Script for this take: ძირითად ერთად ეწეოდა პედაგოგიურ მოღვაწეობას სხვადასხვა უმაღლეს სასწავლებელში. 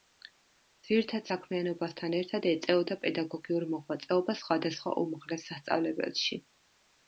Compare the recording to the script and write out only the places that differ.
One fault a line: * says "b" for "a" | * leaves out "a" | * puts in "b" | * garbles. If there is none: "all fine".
* puts in "საქმიანობასთან"